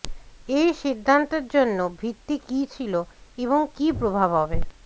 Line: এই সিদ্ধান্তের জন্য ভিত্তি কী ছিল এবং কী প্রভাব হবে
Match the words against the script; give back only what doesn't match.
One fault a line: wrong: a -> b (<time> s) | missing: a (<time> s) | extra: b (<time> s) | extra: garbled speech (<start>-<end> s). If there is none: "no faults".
no faults